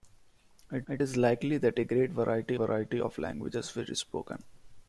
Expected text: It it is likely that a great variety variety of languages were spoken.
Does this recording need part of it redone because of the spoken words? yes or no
no